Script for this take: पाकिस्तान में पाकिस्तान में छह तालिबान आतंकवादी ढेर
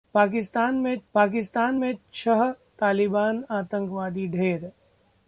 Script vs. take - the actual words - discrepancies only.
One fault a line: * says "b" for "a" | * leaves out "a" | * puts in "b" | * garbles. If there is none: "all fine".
all fine